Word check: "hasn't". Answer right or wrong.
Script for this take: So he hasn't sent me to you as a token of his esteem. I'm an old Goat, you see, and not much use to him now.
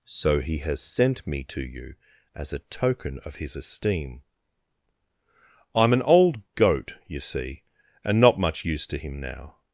wrong